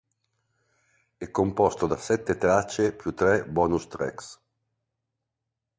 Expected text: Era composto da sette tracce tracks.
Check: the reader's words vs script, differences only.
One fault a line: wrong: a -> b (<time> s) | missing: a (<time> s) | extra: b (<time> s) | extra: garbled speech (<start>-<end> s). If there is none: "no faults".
wrong: Era -> È (1.1 s)
extra: più tre bonus (3.0 s)